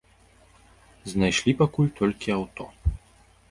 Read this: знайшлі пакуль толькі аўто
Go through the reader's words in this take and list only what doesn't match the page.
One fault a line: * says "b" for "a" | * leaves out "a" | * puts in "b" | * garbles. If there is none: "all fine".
all fine